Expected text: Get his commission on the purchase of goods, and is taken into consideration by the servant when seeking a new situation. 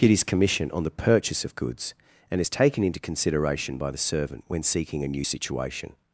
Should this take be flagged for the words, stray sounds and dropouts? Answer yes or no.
no